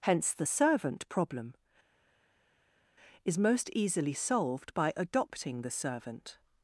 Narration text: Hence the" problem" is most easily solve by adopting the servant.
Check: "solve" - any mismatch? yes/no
yes